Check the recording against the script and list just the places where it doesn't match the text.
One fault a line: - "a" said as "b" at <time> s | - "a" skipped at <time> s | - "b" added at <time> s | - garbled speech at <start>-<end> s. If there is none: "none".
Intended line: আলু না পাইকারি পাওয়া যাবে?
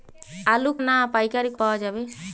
none